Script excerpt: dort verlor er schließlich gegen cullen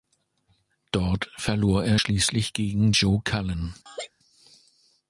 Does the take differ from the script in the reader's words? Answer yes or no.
yes